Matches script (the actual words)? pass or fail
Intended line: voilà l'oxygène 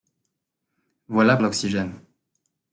pass